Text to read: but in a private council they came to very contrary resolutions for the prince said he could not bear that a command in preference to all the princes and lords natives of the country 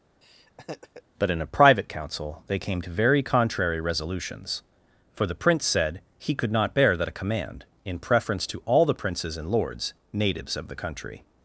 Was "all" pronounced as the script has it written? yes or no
yes